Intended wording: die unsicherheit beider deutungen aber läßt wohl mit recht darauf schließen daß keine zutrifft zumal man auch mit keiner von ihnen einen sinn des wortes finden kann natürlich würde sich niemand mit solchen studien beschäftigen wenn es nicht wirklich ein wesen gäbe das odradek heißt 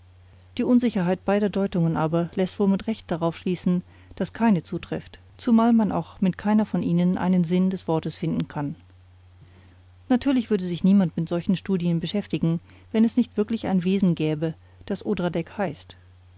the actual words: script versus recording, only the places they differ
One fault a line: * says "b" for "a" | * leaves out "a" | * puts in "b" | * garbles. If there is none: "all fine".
all fine